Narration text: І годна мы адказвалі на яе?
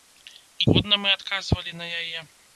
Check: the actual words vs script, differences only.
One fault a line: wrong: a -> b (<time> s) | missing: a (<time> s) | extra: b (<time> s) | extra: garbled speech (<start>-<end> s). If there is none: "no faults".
no faults